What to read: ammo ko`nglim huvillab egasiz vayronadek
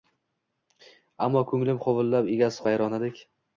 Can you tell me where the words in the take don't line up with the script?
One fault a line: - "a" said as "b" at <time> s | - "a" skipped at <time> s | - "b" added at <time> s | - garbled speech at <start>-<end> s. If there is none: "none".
none